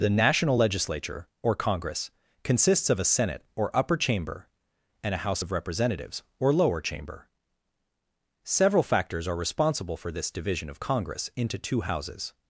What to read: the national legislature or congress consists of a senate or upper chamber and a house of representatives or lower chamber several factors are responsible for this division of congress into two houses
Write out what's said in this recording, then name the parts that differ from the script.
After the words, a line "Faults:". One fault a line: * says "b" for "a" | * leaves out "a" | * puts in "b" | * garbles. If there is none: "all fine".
the national legislature or congress consists of a senate or upper chamber and a house of representatives or lower chamber several factors are responsible for this division of congress into two houses
Faults:
all fine